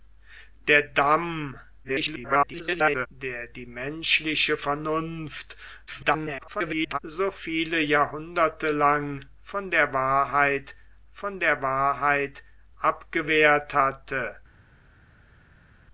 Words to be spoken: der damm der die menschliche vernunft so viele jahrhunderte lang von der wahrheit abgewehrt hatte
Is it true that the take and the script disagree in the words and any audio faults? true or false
true